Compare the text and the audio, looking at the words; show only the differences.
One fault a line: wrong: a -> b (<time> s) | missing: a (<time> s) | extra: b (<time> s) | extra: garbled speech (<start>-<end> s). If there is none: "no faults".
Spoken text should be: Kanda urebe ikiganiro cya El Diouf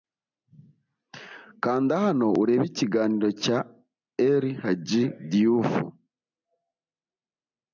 extra: hano (2.0 s)
extra: Hadji (4.6 s)